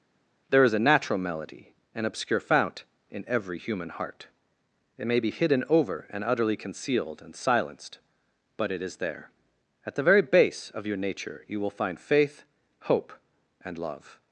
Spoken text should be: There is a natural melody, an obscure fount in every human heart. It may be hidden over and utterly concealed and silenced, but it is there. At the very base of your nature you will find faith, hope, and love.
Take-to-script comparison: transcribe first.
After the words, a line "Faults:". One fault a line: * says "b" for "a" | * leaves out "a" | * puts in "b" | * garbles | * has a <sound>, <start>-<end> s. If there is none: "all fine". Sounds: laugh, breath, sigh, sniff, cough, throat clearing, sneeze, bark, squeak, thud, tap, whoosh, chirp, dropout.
There is a natural melody, an obscure fount in every human heart. It may be hidden over and utterly concealed and silenced, but it is there. At the very base of your nature you will find faith, hope, and love.
Faults:
all fine